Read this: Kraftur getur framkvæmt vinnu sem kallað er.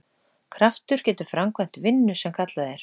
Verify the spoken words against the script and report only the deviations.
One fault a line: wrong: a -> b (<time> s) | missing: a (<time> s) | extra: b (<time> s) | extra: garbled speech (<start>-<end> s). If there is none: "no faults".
no faults